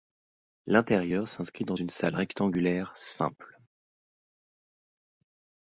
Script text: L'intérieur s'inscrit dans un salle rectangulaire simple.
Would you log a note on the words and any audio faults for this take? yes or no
yes